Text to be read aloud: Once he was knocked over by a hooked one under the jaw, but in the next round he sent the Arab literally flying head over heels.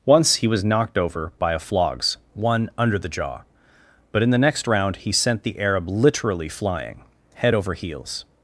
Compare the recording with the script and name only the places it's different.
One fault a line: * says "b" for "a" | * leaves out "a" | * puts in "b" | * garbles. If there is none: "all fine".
* says "flogs" for "hooked"